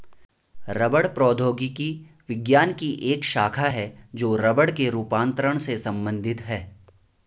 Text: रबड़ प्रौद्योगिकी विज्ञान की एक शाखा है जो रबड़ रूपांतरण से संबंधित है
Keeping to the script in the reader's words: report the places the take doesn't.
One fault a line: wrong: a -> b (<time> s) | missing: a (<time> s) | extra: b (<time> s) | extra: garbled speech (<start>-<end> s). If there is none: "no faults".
extra: के (4.7 s)